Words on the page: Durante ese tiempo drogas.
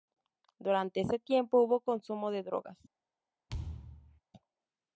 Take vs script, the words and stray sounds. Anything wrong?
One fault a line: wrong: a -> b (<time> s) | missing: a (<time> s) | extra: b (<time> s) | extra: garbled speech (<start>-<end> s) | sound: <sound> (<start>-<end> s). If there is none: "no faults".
extra: hubo consumo de (1.6 s)
sound: thud (3.5-4.2 s)